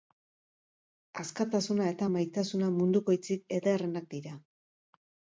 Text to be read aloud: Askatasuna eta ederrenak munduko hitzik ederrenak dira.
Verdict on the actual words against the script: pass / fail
fail